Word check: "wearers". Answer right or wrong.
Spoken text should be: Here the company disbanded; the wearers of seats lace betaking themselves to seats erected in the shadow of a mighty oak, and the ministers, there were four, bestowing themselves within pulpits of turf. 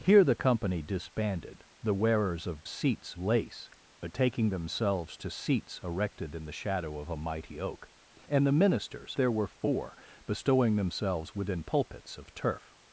right